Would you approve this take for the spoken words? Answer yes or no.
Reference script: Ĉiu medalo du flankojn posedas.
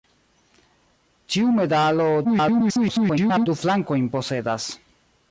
no